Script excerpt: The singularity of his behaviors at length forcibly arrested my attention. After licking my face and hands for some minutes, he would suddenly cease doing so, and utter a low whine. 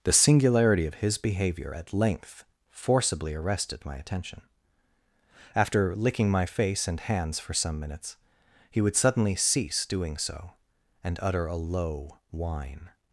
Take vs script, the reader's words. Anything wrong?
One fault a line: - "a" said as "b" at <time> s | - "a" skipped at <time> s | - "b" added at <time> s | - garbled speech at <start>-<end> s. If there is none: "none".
- "behaviors" said as "behavior" at 1.2 s